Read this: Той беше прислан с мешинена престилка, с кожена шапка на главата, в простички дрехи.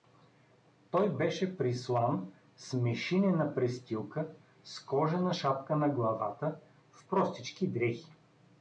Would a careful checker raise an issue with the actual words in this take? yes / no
no